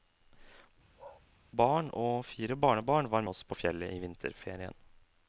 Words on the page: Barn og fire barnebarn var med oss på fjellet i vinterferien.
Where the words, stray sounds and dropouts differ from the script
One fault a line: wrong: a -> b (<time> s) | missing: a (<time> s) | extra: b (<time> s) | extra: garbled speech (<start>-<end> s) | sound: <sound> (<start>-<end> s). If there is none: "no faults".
sound: bark (1.0-1.2 s)
missing: med (3.2 s)